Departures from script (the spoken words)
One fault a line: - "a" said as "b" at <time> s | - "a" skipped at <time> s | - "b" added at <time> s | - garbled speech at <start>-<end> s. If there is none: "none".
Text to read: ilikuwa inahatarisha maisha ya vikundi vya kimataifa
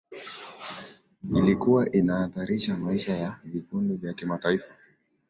none